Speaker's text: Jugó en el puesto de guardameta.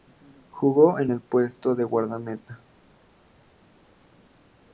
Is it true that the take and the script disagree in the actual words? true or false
false